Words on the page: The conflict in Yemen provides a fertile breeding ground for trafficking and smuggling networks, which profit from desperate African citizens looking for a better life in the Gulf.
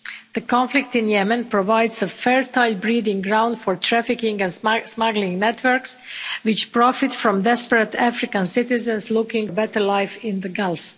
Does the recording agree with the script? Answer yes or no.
no